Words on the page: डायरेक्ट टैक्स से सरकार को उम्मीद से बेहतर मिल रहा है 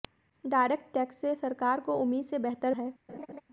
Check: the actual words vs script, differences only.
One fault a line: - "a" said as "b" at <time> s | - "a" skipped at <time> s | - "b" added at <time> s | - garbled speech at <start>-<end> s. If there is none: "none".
- "मिल रहा" skipped at 2.7 s